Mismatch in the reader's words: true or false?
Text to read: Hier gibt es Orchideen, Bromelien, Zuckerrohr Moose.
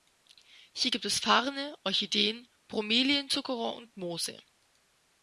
true